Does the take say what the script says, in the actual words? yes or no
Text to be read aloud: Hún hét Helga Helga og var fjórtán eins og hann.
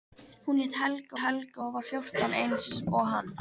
yes